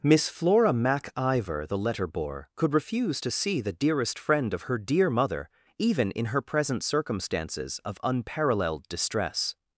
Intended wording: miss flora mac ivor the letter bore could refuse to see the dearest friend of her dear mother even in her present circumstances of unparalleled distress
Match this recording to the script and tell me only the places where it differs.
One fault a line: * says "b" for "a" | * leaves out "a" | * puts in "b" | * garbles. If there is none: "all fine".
all fine